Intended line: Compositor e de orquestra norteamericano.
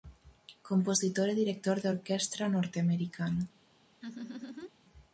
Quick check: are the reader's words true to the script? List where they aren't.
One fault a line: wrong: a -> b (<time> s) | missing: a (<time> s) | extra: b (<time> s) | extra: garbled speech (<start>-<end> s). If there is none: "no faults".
extra: director (1.4 s)